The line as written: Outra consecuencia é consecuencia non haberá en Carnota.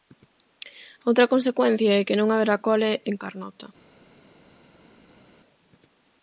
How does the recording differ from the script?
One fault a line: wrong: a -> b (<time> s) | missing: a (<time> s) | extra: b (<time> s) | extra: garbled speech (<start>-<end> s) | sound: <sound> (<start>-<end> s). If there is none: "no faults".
wrong: consecuencia -> que (2.1 s)
extra: cole (2.7 s)